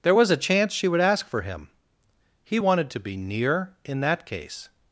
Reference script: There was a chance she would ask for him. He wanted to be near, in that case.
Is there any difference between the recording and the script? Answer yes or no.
no